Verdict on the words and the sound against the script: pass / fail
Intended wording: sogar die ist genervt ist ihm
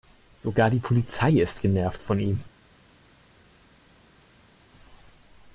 fail